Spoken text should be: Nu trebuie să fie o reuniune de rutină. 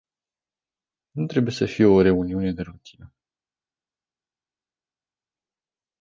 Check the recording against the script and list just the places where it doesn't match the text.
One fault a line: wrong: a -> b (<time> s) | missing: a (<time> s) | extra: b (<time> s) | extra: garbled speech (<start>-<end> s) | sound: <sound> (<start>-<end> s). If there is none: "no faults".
no faults